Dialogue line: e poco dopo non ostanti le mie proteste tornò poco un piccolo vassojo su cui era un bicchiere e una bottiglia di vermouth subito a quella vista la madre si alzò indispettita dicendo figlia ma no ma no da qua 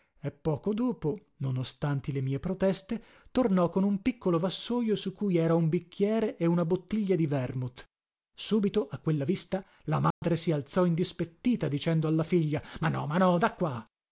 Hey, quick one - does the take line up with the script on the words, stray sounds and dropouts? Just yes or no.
no